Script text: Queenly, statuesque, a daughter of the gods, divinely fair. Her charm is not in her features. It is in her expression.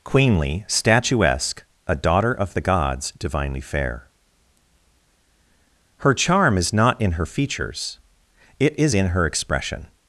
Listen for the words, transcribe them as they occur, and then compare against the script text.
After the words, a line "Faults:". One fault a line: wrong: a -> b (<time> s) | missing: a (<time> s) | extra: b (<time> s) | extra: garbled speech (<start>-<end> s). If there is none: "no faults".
Queenly, statuesque, a daughter of the gods, divinely fair. Her charm is not in her features. It is in her expression.
Faults:
no faults